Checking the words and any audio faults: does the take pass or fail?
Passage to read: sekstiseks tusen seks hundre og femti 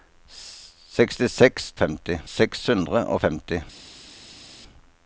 fail